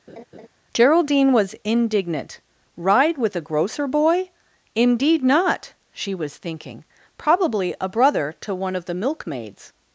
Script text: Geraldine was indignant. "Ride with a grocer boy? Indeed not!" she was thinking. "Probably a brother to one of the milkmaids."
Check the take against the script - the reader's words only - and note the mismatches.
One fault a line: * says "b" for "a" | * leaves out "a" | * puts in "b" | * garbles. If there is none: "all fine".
all fine